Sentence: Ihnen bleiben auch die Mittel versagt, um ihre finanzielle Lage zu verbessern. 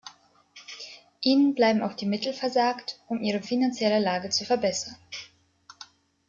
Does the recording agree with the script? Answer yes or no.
yes